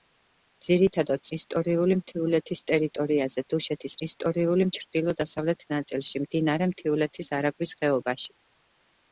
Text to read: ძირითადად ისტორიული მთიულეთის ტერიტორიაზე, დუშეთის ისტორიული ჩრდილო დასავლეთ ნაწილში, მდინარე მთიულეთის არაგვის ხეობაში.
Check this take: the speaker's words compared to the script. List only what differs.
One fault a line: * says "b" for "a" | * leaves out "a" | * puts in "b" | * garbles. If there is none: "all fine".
all fine